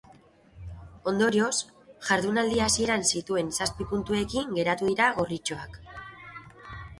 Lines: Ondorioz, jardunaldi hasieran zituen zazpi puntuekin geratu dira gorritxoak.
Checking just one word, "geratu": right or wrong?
right